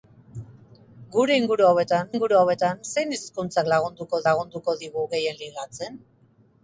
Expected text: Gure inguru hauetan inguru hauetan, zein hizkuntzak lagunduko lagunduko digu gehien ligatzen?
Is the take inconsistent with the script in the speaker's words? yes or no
no